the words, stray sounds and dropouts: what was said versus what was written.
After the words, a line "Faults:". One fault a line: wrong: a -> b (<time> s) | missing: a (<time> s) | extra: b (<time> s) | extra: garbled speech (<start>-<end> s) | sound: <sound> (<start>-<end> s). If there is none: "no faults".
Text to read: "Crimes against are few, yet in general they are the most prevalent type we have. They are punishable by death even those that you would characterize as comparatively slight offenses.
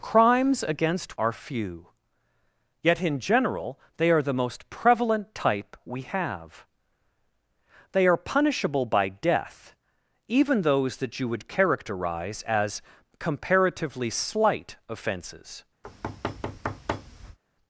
"Crimes against are few, yet in general they are the most prevalent type we have. They are punishable by death even those that you would characterize as comparatively slight offenses.
Faults:
sound: thud (15.8-17.4 s)